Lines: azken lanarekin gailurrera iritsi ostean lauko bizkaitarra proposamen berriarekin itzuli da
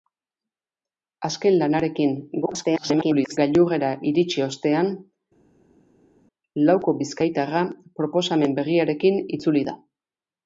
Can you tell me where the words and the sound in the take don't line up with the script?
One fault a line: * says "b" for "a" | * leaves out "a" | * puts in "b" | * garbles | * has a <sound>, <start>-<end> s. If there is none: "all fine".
* garbles